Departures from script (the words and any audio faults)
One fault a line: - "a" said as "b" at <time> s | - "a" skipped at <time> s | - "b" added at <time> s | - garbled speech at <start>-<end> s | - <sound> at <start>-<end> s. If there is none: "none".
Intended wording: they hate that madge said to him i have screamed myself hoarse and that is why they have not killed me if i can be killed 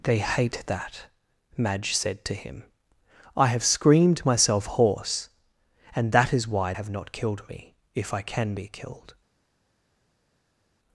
- "they" skipped at 6.7 s